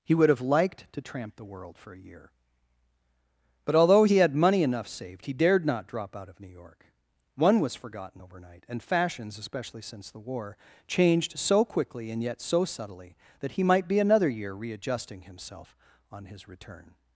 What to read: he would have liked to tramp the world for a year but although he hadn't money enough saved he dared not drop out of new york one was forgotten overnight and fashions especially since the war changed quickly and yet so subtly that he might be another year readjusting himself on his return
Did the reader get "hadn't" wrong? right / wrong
wrong